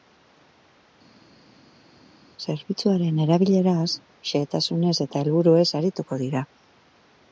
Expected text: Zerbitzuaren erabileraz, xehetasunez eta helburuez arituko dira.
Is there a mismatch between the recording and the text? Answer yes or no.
no